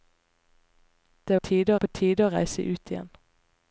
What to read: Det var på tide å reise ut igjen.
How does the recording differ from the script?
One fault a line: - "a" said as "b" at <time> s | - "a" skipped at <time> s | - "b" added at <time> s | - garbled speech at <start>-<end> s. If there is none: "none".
- "var" said as "tide" at 1.4 s